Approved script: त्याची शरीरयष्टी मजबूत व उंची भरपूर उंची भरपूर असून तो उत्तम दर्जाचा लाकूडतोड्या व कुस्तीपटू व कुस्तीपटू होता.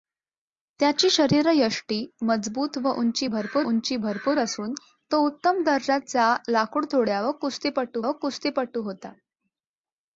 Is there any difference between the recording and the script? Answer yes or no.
no